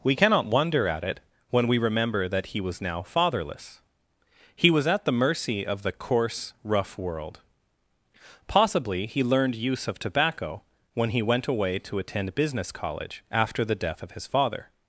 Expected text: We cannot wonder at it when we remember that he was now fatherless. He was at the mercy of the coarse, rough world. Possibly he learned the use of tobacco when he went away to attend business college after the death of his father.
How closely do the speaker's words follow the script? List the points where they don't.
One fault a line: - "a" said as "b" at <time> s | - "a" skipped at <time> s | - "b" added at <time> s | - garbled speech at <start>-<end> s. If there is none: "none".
- "the" skipped at 9.6 s